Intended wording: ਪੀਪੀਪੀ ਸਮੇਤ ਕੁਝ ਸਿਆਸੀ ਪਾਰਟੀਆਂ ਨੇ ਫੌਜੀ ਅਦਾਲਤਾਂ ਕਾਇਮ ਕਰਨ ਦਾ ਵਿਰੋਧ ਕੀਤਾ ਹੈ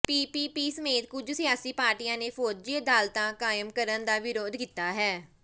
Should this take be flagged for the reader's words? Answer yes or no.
no